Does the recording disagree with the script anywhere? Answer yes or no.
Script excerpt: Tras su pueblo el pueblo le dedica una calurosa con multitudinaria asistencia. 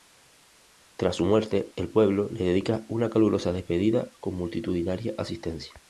yes